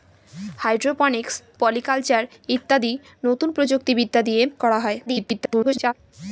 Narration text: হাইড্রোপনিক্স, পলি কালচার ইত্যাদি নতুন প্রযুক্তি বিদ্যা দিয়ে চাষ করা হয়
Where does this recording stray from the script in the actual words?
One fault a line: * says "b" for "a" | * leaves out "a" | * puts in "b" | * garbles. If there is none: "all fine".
* leaves out "চাষ"
* garbles